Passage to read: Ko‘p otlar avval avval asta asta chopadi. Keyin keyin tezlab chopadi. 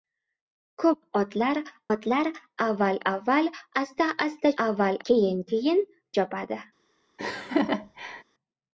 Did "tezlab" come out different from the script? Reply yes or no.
yes